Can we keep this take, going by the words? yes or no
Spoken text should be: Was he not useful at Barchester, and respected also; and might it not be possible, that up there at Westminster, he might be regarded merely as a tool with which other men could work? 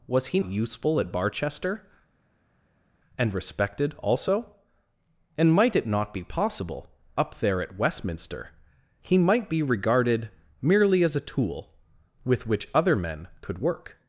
no